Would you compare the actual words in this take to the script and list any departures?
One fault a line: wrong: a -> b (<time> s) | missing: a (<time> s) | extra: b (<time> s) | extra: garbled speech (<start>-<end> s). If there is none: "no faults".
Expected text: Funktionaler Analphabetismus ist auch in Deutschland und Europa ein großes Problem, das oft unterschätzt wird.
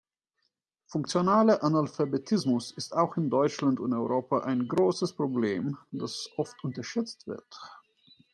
no faults